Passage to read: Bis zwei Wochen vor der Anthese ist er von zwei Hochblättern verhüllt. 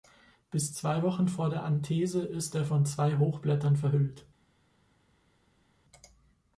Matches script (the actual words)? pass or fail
pass